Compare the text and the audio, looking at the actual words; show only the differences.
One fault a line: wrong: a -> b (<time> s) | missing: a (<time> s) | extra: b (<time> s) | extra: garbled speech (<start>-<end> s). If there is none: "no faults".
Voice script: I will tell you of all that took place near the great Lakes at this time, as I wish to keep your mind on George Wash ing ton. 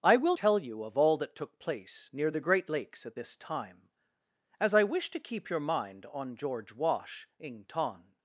no faults